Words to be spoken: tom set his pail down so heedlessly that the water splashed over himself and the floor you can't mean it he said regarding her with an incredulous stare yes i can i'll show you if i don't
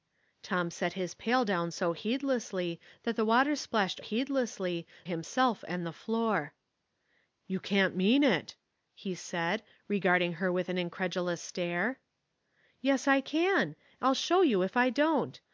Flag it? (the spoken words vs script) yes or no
yes